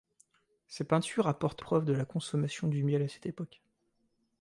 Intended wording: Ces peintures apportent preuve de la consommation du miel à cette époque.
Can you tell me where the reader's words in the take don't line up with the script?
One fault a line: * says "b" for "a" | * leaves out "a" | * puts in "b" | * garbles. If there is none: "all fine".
all fine